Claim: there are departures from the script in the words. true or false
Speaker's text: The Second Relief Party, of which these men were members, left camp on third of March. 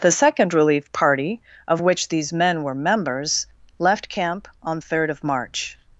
false